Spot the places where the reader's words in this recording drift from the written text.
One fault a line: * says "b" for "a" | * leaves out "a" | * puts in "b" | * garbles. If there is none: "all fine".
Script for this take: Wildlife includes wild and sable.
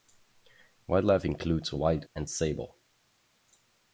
all fine